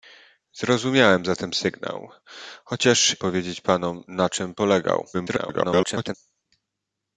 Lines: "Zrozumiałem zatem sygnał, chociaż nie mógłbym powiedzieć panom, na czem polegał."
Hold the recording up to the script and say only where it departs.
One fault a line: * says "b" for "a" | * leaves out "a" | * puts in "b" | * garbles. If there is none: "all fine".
* leaves out "nie mógłbym"
* garbles